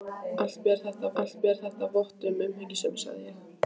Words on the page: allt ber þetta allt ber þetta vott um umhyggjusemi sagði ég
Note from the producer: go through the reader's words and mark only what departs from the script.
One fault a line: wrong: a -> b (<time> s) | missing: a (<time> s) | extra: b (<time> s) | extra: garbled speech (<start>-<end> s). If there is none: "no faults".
no faults